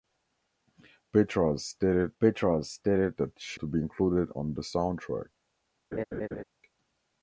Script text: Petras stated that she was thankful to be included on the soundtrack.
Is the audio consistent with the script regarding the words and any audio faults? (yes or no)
no